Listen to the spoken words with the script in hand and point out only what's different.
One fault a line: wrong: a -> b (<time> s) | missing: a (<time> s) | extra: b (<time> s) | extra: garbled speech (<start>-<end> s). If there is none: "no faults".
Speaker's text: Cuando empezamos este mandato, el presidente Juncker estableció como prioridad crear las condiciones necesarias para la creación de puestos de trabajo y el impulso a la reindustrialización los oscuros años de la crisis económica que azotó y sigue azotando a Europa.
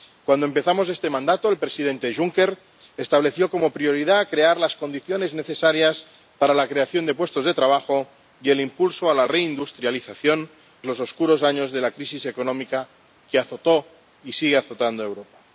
no faults